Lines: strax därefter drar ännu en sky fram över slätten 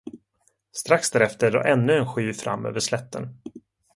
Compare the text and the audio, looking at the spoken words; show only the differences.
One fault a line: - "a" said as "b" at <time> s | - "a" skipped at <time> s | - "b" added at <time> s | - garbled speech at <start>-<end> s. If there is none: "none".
none